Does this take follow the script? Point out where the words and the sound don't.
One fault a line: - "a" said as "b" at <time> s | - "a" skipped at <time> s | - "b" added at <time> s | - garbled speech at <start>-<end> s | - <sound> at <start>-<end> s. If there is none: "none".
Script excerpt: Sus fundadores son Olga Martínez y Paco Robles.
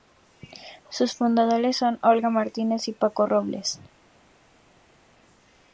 none